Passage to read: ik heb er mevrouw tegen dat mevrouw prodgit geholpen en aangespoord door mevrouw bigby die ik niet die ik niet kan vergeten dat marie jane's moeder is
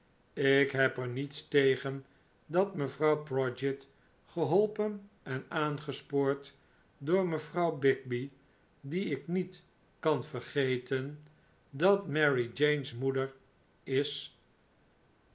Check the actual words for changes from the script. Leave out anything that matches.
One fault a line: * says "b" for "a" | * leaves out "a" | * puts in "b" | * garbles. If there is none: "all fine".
* says "niets" for "mevrouw"
* leaves out "die ik niet"